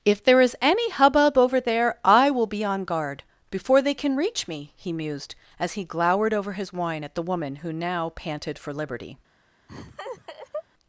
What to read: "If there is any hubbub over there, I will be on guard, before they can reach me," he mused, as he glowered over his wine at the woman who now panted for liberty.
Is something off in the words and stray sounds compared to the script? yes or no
yes